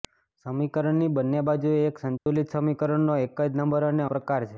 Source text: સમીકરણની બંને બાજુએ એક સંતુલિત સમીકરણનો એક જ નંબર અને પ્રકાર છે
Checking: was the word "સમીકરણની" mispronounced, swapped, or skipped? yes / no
no